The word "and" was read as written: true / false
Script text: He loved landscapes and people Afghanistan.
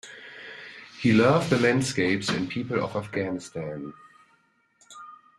true